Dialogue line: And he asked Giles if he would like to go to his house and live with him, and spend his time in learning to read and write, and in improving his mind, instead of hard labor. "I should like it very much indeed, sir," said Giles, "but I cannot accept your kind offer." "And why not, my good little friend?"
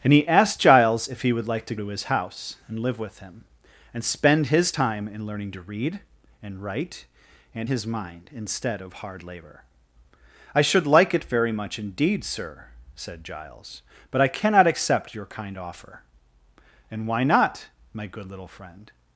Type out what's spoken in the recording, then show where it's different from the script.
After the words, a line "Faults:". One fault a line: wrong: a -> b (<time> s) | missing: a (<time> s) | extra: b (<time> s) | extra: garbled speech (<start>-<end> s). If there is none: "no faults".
And he asked Giles if he would like to to his house and live with him, and spend his time in learning to read and write, and his mind, instead of hard labor. "I should like it very much indeed, sir," said Giles, "but I cannot accept your kind offer." "And why not, my good little friend?"
Faults:
missing: go (1.8 s)
missing: in improving (7.7 s)